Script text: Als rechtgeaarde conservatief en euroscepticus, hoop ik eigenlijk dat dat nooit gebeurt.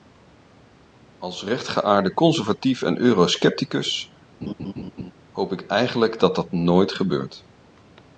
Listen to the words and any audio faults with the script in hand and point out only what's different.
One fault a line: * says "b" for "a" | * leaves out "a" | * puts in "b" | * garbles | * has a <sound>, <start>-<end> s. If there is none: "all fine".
* has a laugh, 4.4-5.1 s